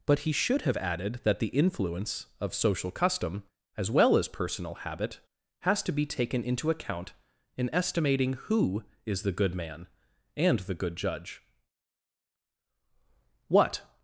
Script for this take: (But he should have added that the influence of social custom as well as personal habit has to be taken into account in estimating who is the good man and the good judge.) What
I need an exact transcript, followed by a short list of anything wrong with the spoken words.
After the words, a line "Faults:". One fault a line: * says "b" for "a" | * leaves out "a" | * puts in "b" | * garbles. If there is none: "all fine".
(But he should have added that the influence of social custom as well as personal habit has to be taken into account in estimating who is the good man and the good judge.) What
Faults:
all fine